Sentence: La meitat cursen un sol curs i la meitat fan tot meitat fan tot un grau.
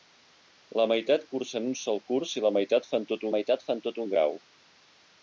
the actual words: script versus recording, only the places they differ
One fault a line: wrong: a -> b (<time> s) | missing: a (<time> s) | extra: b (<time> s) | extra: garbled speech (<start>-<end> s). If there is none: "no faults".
no faults